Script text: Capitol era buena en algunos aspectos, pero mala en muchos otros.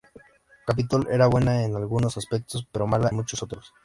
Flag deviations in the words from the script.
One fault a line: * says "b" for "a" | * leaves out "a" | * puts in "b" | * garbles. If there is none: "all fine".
* leaves out "en"